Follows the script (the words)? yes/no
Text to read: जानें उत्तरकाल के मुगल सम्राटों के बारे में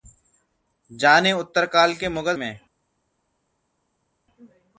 no